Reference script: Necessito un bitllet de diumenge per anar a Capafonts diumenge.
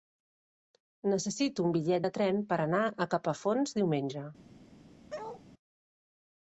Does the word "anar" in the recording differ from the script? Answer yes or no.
no